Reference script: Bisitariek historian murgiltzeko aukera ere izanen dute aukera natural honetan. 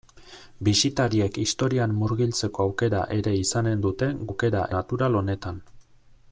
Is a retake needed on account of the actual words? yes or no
no